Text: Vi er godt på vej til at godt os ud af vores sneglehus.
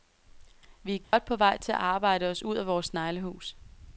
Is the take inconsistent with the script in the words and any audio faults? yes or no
yes